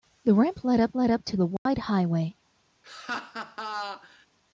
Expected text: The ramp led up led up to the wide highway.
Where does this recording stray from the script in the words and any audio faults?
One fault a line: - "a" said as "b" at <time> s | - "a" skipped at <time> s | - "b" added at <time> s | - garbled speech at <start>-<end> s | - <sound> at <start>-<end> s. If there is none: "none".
- dropout at 1.6-1.7 s
- laugh at 2.8-4.3 s